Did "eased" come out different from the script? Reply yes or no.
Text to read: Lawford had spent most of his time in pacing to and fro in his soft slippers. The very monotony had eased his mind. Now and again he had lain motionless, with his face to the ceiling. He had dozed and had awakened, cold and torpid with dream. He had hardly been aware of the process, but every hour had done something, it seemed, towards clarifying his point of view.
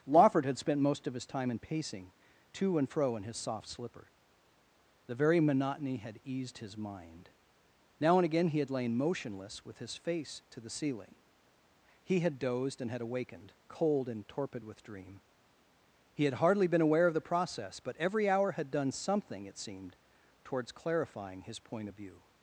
no